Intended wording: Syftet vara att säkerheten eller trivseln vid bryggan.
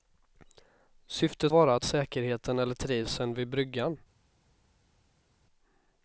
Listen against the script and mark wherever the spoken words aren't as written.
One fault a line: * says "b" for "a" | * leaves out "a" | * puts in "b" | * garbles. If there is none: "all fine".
all fine